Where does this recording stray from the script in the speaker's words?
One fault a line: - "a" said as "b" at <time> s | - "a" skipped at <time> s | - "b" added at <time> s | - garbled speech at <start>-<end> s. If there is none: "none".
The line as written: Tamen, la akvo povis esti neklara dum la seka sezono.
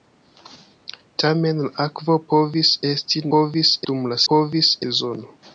- "neklara" said as "povis" at 3.3 s
- "seka" said as "povis" at 4.3 s